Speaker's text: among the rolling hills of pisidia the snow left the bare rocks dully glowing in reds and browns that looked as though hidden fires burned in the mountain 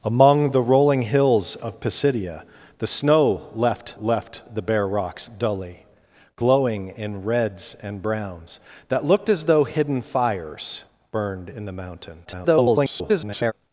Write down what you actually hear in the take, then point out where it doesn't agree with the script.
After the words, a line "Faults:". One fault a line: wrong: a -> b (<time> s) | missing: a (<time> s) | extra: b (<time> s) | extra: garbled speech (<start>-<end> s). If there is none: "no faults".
among the rolling hills of pisidia the snow left left the bare rocks dully glowing in reds and browns that looked as though hidden fires burned in the mountain [garbled]
Faults:
extra: left (4.0 s)
extra: garbled speech (12.3-13.5 s)